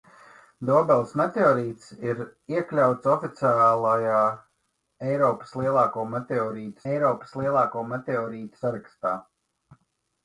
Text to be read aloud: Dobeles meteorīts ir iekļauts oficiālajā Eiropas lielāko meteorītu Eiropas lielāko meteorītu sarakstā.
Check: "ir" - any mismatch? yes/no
no